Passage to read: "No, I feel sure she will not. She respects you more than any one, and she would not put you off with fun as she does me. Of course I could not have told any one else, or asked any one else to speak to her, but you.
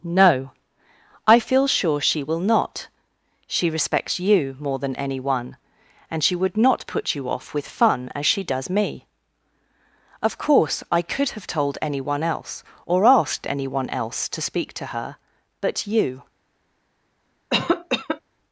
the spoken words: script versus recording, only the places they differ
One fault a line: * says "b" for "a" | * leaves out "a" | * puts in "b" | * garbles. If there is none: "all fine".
* leaves out "not"